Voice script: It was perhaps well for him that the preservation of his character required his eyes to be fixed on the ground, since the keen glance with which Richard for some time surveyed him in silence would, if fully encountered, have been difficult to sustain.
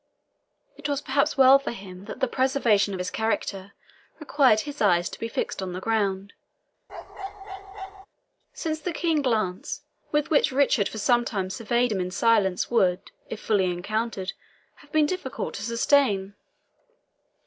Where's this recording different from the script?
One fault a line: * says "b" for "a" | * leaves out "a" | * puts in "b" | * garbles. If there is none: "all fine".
all fine